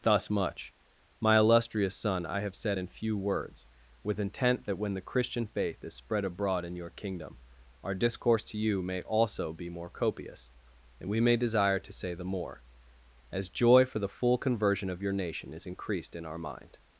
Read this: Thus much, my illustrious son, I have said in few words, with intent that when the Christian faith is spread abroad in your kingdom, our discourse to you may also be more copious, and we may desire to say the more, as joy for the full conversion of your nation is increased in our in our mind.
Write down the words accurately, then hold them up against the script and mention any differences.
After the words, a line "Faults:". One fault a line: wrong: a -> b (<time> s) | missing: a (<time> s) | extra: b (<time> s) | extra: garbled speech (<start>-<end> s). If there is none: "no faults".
Thus much, my illustrious son, I have said in few words, with intent that when the Christian faith is spread abroad in your kingdom, our discourse to you may also be more copious, and we may desire to say the more, as joy for the full conversion of your nation is increased in our mind.
Faults:
missing: in our (16.4 s)